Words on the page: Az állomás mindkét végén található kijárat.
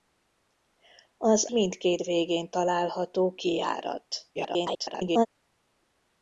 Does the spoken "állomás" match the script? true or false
false